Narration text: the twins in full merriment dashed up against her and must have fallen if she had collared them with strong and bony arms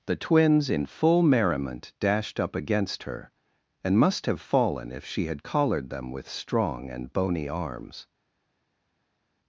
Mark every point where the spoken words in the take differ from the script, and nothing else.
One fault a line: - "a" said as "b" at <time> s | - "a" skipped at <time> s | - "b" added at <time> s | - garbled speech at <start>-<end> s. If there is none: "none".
none